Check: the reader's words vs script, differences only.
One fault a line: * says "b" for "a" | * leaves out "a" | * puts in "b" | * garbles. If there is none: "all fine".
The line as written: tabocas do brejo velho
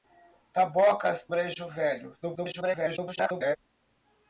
* leaves out "do"
* garbles